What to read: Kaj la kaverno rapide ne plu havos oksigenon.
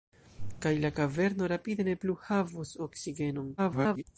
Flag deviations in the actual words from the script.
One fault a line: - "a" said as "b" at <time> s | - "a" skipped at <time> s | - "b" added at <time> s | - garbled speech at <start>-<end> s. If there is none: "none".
- garbled speech at 3.6-4.0 s